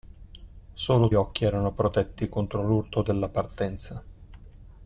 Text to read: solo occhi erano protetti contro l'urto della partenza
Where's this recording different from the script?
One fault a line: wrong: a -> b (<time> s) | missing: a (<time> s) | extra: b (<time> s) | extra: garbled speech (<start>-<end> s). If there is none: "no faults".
no faults